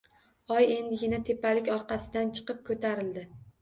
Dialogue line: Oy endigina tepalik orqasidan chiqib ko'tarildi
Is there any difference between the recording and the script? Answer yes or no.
no